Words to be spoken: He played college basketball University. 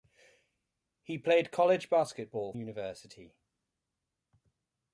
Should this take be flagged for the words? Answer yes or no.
no